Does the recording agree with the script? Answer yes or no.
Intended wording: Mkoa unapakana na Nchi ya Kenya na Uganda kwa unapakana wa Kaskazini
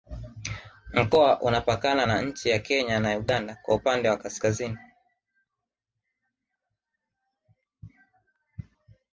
no